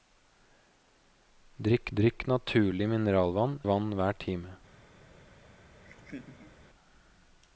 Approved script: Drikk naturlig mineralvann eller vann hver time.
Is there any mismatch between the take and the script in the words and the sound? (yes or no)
yes